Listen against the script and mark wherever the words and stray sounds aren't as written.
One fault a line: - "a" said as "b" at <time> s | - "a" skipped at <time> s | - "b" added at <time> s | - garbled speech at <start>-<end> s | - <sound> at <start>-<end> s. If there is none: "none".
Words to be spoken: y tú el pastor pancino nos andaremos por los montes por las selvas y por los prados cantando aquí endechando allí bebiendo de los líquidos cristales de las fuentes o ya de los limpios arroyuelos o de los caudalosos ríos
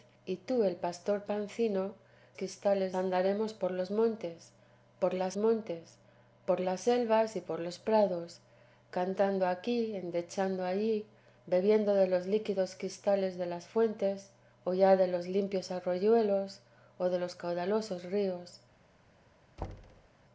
- "nos" said as "cristales" at 2.3 s
- "montes por las" added at 5.4 s
- thud at 19.6-20.1 s